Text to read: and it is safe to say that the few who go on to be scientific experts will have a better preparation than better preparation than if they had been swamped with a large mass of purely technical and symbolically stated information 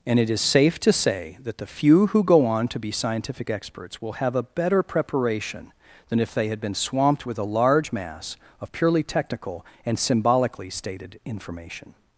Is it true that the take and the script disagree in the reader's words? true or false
true